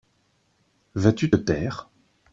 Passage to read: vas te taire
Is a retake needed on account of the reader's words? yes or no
yes